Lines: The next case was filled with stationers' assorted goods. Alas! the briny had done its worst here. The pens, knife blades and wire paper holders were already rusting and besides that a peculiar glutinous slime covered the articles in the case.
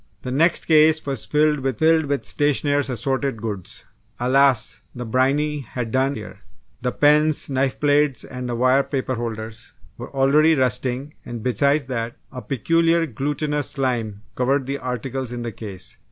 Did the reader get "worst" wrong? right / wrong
wrong